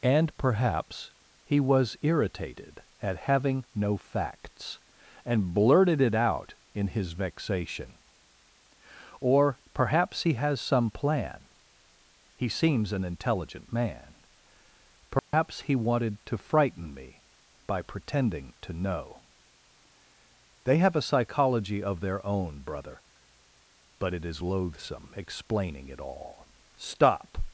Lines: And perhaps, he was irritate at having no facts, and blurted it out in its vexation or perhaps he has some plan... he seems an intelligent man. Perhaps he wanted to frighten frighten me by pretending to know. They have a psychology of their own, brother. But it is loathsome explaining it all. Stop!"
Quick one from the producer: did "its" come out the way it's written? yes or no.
no